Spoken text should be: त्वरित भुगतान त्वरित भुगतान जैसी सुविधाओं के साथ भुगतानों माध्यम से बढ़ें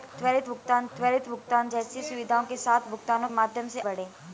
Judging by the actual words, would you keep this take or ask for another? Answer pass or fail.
pass